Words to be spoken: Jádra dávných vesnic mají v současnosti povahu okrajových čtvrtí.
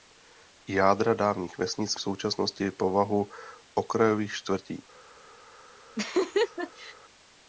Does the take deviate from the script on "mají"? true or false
true